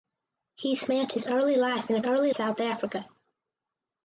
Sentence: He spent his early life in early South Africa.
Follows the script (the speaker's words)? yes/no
yes